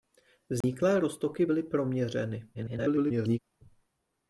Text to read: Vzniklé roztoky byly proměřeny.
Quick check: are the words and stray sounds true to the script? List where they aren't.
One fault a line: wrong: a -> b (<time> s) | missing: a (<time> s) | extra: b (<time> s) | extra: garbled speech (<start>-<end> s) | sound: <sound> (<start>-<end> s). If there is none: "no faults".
sound: dropout (0.6-0.6 s)
extra: garbled speech (2.5-3.4 s)